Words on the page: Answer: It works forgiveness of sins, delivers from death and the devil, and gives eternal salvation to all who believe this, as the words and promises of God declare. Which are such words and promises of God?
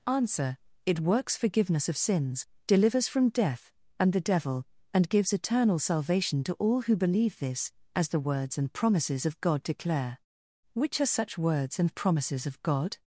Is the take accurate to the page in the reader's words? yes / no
yes